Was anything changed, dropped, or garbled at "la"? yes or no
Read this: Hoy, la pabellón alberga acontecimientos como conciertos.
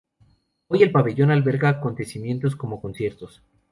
yes